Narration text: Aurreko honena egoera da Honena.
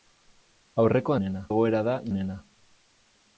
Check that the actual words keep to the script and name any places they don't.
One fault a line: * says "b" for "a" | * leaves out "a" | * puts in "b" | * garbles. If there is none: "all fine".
all fine